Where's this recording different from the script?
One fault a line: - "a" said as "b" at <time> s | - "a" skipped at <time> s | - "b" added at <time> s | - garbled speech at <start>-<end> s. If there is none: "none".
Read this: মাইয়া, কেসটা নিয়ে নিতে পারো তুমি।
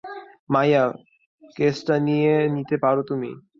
none